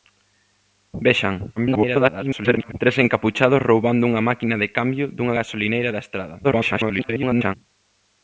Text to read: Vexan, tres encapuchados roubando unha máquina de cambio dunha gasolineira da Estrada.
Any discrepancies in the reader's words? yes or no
yes